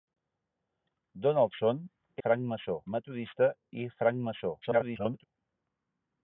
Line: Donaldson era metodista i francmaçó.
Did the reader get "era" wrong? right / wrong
wrong